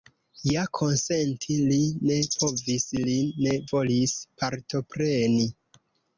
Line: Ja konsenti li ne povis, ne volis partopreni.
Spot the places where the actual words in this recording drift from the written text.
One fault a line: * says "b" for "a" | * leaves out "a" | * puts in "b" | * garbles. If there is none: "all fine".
* puts in "li"